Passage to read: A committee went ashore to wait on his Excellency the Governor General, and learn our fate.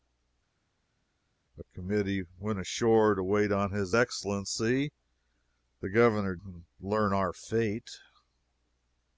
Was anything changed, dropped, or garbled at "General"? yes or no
yes